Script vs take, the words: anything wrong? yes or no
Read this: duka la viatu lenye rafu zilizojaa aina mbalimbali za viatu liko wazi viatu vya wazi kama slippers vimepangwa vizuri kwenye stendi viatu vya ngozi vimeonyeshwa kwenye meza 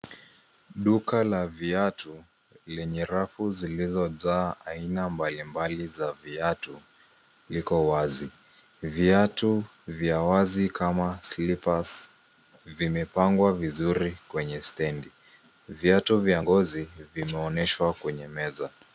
no